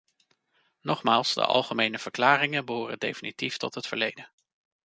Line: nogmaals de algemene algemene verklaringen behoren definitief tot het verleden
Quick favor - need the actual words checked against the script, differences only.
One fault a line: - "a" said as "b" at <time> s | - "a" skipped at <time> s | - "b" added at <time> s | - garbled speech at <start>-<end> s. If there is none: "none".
- "algemene" skipped at 2.0 s